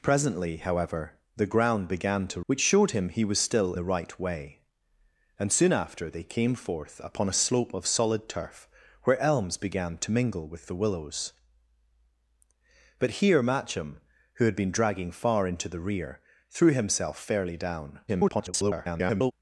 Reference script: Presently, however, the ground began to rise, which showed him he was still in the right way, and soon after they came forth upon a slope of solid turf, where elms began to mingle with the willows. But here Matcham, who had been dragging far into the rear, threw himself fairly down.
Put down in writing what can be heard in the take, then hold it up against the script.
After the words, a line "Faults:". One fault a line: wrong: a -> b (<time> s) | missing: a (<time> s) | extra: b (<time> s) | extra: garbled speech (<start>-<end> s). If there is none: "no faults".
Presently, however, the ground began to which showed him he was still the right way, and soon after they came forth upon a slope of solid turf, where elms began to mingle with the willows. But here Matcham, who had been dragging far into the rear, threw himself fairly down. [garbled]
Faults:
missing: rise (2.4 s)
missing: in (3.7 s)
extra: garbled speech (18.1-19.3 s)